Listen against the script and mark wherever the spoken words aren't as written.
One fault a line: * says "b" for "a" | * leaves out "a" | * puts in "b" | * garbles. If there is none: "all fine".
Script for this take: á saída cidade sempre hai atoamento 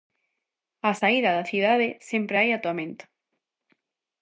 * puts in "da"